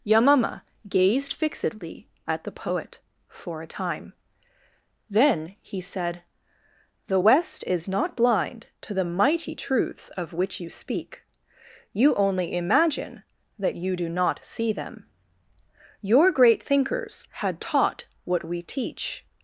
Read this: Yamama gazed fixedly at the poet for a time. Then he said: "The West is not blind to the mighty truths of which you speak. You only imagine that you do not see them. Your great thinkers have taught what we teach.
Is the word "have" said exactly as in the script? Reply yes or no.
no